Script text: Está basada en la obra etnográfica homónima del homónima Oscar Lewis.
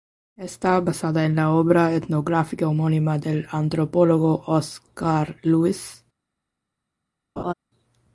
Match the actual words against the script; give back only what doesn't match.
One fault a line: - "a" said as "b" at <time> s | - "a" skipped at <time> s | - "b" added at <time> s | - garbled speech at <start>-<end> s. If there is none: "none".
- "homónima" said as "antropólogo" at 3.5 s